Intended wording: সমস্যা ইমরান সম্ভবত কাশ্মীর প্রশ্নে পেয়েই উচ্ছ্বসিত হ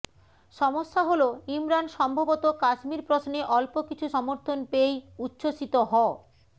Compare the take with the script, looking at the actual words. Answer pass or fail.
fail